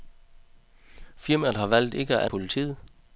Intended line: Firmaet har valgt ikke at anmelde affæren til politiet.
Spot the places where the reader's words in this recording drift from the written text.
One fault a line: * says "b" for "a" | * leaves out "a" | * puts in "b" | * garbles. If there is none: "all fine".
* leaves out "anmelde affæren til"